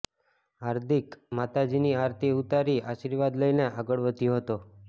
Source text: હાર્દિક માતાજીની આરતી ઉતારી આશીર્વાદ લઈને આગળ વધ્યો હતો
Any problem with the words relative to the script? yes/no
no